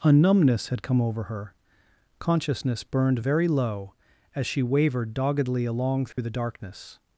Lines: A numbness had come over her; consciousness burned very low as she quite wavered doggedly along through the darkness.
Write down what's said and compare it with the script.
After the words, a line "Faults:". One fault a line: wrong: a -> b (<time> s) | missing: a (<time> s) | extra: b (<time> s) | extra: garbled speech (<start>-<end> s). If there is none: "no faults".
A numbness had come over her; consciousness burned very low as she wavered doggedly along through the darkness.
Faults:
missing: quite (4.6 s)